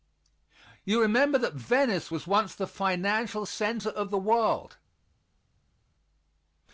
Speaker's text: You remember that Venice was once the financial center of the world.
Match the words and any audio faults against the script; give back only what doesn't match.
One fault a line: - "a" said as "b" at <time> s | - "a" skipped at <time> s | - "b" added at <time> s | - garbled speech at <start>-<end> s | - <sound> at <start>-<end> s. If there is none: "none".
none